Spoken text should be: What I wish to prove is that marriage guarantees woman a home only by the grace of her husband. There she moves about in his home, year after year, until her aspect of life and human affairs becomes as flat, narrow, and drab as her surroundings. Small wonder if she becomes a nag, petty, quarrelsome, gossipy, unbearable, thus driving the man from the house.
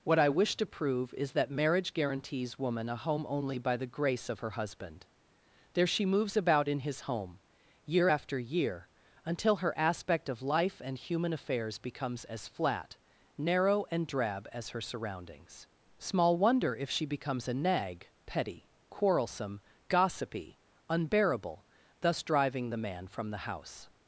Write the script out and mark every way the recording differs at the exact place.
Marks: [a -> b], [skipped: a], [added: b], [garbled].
What I wish to prove is that marriage guarantees woman a home only by the grace of her husband. There she moves about in his home, year after year, until her aspect of life and human affairs becomes as flat, narrow, and drab as her surroundings. Small wonder if she becomes a nag, petty, quarrelsome, gossipy, unbearable, thus driving the man from the house.